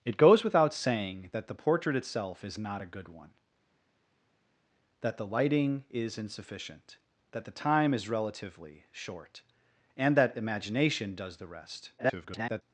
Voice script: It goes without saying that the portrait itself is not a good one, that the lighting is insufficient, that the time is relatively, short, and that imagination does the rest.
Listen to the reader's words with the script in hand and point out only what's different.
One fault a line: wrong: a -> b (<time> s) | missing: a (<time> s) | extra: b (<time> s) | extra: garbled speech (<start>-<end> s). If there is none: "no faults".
extra: garbled speech (12.0-12.6 s)